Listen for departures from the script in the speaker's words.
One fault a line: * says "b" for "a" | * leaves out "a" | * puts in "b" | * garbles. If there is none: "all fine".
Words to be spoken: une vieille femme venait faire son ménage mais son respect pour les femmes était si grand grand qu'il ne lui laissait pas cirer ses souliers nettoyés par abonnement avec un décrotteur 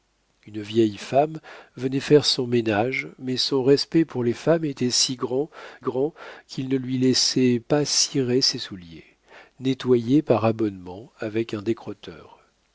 all fine